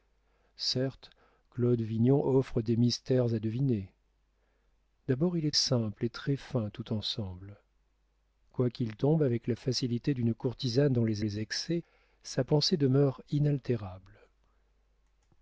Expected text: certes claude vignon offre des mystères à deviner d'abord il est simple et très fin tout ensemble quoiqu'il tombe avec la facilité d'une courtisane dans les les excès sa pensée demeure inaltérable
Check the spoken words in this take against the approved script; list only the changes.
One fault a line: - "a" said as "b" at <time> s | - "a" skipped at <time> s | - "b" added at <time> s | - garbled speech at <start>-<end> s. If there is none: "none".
none